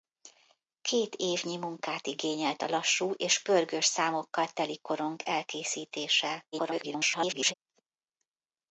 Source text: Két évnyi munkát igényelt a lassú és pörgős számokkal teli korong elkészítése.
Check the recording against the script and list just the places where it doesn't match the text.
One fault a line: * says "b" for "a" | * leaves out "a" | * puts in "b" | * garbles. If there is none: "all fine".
* garbles